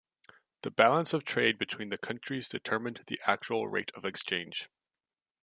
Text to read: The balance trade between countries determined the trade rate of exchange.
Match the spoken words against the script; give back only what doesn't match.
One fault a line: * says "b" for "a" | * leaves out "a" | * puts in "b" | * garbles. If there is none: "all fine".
* puts in "of"
* puts in "the"
* says "actual" for "trade"